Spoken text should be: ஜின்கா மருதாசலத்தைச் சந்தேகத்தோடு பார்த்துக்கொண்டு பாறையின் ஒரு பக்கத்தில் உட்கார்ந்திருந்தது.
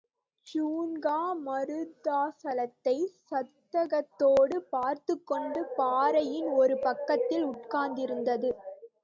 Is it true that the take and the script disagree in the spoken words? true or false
false